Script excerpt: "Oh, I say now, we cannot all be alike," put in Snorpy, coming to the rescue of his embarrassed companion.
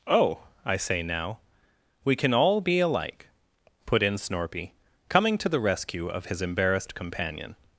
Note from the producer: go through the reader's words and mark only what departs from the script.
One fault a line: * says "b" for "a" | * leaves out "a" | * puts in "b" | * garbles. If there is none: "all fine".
* says "can" for "cannot"